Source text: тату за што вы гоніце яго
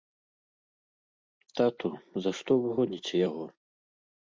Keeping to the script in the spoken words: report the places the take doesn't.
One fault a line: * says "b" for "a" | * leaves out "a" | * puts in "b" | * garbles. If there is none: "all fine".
all fine